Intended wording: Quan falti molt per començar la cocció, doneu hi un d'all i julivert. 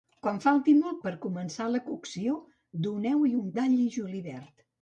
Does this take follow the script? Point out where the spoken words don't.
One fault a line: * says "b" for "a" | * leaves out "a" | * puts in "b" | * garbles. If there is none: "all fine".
all fine